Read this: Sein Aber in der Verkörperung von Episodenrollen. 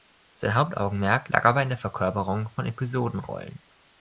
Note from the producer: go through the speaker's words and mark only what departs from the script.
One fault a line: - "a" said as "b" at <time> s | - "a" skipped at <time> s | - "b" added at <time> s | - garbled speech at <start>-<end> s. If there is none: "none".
- "Hauptaugenmerk lag" added at 0.6 s